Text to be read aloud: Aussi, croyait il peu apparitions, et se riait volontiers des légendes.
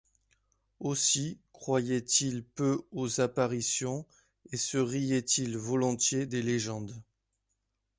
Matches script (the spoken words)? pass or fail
fail